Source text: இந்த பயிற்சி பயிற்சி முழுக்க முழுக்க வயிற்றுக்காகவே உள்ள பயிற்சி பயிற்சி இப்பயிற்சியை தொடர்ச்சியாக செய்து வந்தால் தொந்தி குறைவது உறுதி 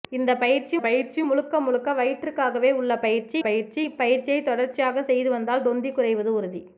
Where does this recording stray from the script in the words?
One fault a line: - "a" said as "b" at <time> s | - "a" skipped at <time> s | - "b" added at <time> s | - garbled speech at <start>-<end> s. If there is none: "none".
none